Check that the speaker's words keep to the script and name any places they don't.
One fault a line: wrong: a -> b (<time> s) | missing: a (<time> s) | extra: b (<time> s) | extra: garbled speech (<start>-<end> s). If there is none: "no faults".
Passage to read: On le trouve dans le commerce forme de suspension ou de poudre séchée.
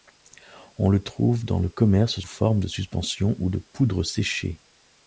no faults